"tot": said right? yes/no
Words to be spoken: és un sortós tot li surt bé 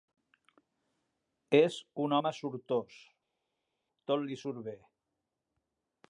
yes